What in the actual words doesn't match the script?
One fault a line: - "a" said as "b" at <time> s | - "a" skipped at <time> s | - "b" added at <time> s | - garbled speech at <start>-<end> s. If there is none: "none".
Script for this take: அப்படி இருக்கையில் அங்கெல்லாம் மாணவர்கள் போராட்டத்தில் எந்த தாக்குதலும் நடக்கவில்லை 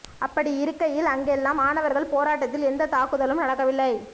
none